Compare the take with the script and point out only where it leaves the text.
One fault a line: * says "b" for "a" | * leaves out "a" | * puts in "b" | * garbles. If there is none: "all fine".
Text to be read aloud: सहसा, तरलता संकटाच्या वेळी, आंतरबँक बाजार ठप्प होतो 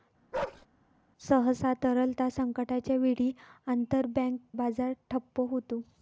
all fine